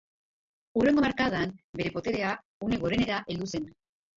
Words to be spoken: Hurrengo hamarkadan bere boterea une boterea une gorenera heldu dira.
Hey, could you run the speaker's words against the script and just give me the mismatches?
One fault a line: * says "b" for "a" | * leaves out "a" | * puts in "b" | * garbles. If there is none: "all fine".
* leaves out "boterea une"
* says "zen" for "dira"